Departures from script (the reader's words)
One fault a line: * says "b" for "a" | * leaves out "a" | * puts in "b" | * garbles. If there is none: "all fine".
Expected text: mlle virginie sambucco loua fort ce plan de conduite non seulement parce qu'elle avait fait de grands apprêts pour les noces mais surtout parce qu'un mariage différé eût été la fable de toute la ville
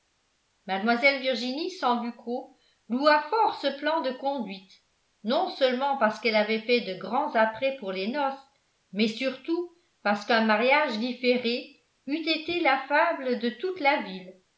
all fine